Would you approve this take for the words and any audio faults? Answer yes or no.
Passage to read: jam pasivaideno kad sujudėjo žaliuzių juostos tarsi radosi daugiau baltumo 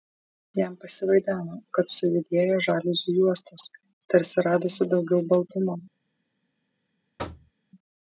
no